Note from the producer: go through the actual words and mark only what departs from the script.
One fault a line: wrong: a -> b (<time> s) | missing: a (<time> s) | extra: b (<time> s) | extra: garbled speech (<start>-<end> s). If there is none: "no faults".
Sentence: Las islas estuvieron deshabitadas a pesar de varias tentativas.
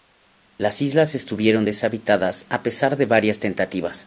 no faults